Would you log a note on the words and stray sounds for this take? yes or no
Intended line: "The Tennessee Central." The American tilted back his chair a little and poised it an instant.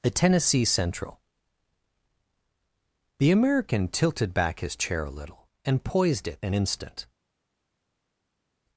yes